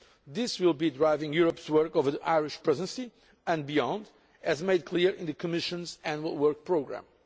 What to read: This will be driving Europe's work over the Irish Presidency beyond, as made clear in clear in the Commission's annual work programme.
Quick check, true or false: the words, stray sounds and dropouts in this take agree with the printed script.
false